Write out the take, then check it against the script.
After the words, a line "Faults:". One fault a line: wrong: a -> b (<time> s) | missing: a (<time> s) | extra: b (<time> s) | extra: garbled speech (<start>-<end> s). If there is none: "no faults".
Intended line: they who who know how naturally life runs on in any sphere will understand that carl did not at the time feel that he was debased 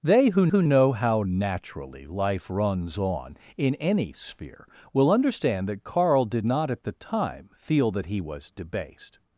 they who who know how naturally life runs on in any sphere will understand that carl did not at the time feel that he was debased
Faults:
no faults